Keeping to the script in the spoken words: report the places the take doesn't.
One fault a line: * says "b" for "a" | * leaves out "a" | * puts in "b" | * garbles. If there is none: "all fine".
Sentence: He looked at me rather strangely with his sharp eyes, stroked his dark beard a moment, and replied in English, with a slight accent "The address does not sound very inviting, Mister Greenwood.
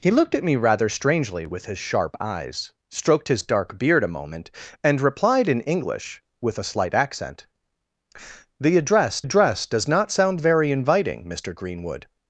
* puts in "address"